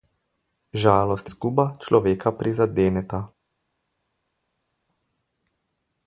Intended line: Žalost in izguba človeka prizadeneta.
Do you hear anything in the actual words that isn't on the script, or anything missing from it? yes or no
yes